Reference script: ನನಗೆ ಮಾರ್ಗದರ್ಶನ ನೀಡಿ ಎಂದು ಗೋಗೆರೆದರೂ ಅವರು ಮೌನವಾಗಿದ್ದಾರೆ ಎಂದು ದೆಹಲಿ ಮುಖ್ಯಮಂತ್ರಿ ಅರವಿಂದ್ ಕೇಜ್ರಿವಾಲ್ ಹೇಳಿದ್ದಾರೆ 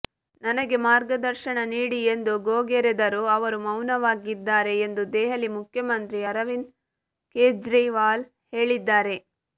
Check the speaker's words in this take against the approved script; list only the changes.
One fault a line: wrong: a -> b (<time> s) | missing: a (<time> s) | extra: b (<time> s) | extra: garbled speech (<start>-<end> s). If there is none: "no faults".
no faults